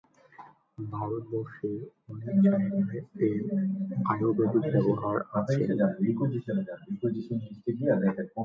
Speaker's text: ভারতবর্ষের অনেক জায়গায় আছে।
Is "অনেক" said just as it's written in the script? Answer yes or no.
yes